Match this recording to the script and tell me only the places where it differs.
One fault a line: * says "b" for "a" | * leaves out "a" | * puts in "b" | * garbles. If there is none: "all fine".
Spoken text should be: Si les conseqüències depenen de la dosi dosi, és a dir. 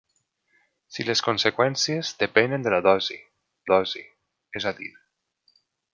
all fine